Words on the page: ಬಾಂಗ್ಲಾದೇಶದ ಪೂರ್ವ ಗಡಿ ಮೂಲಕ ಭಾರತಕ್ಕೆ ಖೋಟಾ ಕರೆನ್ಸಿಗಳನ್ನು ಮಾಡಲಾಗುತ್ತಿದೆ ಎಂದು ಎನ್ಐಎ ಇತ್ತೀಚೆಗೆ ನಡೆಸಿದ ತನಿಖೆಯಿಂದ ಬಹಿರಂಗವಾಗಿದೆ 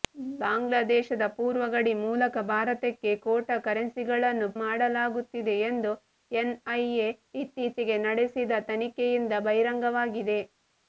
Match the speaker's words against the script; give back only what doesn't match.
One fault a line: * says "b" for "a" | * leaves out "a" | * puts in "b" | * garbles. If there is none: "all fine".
all fine